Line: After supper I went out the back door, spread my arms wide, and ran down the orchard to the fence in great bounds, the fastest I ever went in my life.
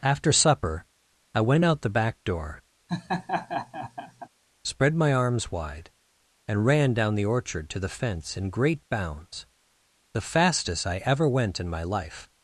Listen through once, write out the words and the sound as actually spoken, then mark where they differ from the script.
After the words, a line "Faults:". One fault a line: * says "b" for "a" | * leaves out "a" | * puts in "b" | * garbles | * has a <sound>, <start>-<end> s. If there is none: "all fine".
After supper I went out the back door, spread my arms wide, and ran down the orchard to the fence in great bounds, the fastest I ever went in my life.
Faults:
* has a laugh, 2.9-4.3 s